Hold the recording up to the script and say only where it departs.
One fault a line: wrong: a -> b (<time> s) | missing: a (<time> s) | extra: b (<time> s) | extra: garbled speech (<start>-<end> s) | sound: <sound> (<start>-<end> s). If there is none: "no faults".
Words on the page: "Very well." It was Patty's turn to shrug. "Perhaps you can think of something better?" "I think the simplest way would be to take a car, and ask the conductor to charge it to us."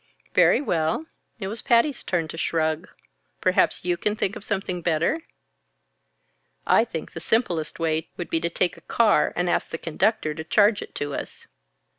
no faults